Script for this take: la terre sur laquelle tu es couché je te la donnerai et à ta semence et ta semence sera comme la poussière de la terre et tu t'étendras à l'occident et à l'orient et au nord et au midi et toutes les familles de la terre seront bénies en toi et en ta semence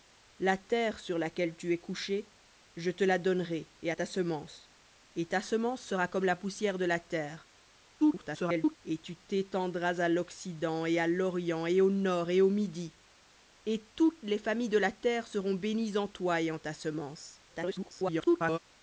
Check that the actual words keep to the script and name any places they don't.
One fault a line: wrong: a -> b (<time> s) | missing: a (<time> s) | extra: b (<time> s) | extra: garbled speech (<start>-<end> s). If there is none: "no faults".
extra: garbled speech (8.0-8.8 s)
extra: garbled speech (17.5-18.6 s)